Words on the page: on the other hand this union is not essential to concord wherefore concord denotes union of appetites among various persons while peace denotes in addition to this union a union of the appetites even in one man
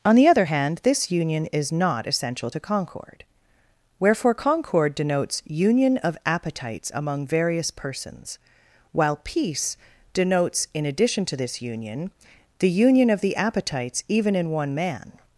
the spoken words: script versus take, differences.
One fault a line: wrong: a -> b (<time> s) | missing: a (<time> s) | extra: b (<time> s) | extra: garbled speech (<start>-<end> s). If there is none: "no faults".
wrong: a -> the (12.6 s)